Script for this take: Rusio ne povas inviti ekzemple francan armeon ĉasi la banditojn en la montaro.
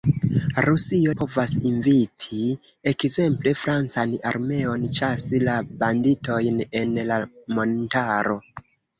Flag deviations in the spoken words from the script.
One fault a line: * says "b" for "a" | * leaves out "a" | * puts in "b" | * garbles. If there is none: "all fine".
* leaves out "ne"